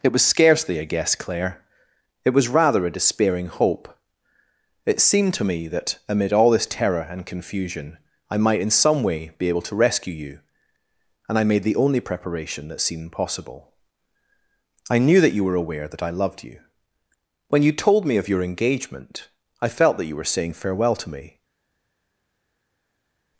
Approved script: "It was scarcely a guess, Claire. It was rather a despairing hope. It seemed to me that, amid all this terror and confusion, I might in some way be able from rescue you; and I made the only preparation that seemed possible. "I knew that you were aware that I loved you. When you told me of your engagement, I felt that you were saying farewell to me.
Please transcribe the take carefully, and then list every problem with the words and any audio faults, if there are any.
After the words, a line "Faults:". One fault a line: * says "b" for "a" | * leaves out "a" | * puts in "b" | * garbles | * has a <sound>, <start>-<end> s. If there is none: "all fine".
"It was scarcely a guess, Claire. It was rather a despairing hope. It seemed to me that, amid all this terror and confusion, I might in some way be able to rescue you; and I made the only preparation that seemed possible. "I knew that you were aware that I loved you. When you told me of your engagement, I felt that you were saying farewell to me.
Faults:
* says "to" for "from"